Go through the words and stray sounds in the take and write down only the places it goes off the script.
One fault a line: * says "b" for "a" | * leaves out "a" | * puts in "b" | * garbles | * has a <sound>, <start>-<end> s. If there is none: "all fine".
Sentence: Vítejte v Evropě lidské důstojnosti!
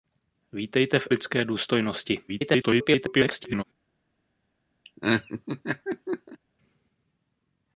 * leaves out "Evropě"
* garbles
* has a laugh, 4.8-6.4 s